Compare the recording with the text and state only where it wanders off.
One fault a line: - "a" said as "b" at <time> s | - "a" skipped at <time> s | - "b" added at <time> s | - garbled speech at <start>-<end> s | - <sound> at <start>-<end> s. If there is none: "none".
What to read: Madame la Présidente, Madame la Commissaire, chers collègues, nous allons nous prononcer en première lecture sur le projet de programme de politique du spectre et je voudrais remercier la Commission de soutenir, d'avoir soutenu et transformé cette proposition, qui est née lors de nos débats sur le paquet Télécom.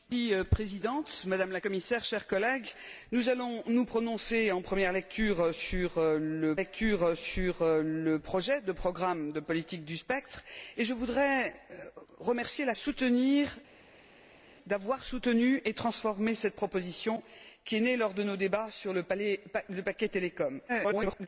- "lecture sur le" added at 6.5 s
- "Commission de" skipped at 12.8 s
- garbled speech at 20.7-21.3 s